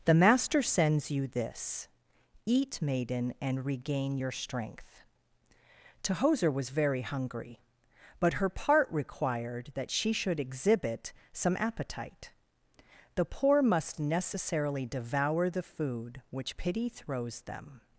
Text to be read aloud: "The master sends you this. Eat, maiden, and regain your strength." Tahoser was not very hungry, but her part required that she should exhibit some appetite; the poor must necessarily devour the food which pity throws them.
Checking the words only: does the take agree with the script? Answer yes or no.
no